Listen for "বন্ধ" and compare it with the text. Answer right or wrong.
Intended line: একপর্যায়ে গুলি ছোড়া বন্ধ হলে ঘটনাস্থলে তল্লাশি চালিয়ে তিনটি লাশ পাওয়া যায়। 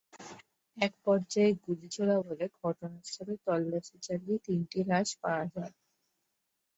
wrong